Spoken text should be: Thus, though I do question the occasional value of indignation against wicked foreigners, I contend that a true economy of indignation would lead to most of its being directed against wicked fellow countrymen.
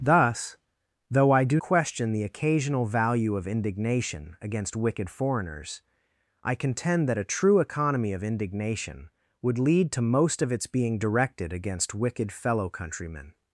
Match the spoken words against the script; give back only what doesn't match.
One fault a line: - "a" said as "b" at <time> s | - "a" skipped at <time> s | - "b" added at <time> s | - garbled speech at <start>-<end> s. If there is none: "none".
none